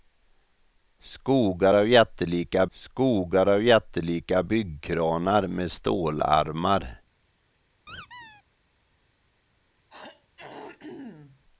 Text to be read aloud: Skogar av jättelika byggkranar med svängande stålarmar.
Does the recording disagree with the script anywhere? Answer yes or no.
yes